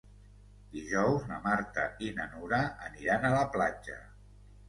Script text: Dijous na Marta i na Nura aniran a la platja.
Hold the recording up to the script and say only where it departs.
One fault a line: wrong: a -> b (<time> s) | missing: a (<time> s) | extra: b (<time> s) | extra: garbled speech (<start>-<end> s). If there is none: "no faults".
no faults